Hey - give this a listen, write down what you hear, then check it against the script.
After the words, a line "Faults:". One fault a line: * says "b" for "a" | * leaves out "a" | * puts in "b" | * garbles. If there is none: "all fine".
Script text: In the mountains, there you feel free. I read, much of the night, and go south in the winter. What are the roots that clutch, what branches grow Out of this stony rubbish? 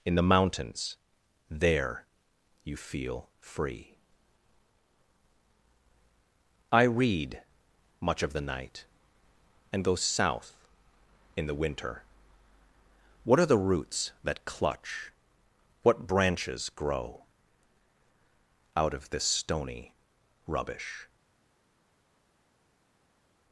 In the mountains, there you feel free. I read, much of the night, and go south in the winter. What are the roots that clutch, what branches grow Out of this stony rubbish?
Faults:
all fine